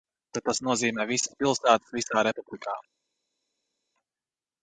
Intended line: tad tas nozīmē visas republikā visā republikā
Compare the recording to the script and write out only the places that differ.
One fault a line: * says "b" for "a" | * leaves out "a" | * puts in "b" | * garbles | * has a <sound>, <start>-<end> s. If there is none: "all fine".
* says "pilsētas" for "republikā"